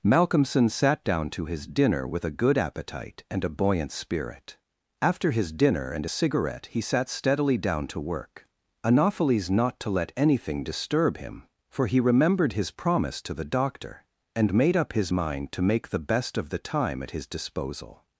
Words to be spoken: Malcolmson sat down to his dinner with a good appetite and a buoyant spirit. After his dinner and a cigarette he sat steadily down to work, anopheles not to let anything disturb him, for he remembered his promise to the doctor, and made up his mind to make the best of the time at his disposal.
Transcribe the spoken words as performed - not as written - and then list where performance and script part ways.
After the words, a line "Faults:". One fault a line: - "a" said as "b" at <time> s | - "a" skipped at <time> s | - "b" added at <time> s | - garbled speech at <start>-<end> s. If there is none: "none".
Malcolmson sat down to his dinner with a good appetite and a buoyant spirit. After his dinner and a cigarette he sat steadily down to work, anopheles not to let anything disturb him, for he remembered his promise to the doctor, and made up his mind to make the best of the time at his disposal.
Faults:
none